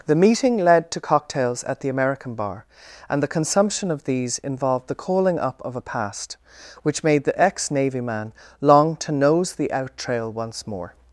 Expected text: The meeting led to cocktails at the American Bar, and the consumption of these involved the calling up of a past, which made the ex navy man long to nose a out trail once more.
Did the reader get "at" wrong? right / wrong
right